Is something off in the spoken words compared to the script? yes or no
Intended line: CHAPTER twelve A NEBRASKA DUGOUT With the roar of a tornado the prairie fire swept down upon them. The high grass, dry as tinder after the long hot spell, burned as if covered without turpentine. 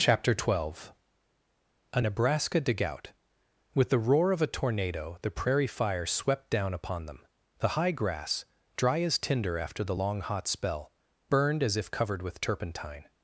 yes